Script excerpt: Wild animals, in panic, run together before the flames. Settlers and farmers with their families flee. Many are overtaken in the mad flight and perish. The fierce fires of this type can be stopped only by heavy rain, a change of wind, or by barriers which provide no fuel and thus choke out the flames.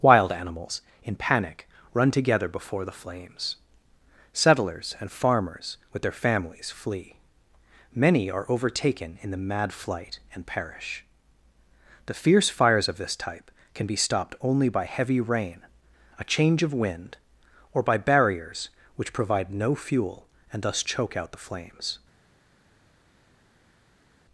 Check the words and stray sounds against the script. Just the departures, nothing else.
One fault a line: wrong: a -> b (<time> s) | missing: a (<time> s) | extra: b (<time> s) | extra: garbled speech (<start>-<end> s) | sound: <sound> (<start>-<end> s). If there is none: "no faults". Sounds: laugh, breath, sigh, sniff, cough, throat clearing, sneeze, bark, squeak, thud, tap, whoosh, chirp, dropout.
no faults